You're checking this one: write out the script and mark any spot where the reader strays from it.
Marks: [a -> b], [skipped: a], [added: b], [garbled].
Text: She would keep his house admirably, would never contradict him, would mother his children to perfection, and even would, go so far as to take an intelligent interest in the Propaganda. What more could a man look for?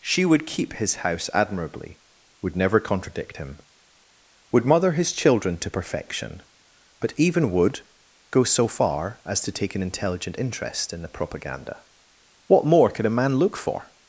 She would keep his house admirably, would never contradict him, would mother his children to perfection, [and -> but] even would, go so far as to take an intelligent interest in the Propaganda. What more could a man look for?